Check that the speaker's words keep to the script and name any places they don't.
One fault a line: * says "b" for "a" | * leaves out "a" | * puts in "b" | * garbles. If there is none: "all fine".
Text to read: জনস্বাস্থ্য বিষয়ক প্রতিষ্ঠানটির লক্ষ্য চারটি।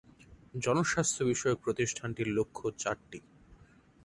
all fine